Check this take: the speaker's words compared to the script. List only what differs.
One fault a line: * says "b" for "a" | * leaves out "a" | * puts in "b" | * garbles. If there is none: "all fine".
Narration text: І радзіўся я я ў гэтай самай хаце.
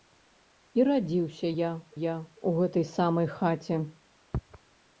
all fine